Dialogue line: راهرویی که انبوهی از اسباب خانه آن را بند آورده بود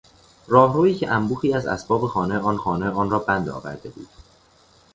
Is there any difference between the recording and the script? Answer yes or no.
yes